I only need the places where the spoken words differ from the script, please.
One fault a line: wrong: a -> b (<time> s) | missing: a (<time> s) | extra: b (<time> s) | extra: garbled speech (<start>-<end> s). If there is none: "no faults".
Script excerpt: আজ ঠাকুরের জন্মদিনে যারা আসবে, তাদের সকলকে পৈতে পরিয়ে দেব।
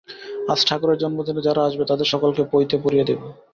no faults